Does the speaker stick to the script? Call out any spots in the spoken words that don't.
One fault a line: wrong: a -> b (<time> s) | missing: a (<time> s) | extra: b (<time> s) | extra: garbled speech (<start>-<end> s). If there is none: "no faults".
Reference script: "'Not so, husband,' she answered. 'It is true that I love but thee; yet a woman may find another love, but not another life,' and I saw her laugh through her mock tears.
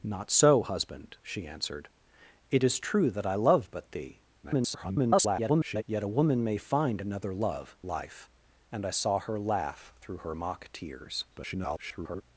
extra: garbled speech (4.4-5.8 s)
missing: but not another (7.8 s)
extra: garbled speech (11.3-12.2 s)